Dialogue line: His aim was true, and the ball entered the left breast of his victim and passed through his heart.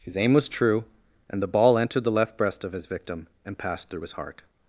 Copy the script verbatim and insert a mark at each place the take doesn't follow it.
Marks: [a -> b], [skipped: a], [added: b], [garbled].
His aim was true, and the ball entered the left breast of his victim and passed through his heart.